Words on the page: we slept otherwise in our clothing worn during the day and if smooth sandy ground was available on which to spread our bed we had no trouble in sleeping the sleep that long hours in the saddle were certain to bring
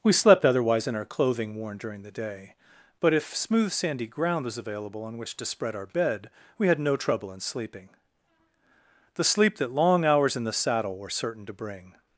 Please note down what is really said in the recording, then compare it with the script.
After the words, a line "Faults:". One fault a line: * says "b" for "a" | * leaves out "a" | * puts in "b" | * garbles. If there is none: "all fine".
we slept otherwise in our clothing worn during the day but if smooth sandy ground was available on which to spread our bed we had no trouble in sleeping the sleep that long hours in the saddle were certain to bring
Faults:
* says "but" for "and"